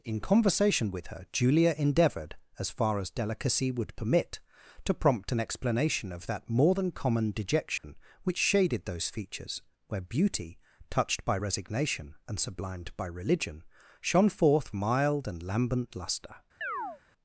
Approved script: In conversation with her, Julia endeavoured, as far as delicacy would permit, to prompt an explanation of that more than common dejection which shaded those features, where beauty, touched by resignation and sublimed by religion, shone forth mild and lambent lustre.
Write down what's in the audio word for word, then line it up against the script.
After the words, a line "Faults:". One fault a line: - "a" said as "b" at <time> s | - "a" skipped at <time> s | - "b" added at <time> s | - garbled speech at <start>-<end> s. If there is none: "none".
In conversation with her, Julia endeavoured, as far as delicacy would permit, to prompt an explanation of that more than common dejection which shaded those features, where beauty, touched by resignation and sublimed by religion, shone forth mild and lambent lustre.
Faults:
none